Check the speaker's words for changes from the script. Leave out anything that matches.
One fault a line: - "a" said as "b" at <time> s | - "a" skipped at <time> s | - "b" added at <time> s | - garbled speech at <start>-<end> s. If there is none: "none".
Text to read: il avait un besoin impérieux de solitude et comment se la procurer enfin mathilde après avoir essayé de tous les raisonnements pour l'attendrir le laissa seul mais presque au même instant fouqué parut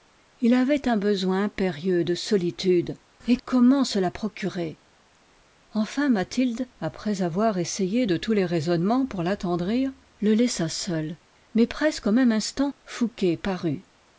none